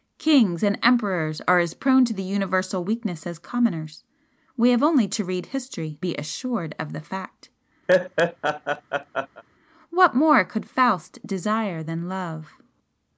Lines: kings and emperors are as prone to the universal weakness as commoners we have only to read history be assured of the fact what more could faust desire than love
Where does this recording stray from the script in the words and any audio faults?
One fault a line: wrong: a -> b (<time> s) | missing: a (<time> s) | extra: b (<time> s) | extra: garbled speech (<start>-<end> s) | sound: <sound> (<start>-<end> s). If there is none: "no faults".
sound: laugh (7.9-9.4 s)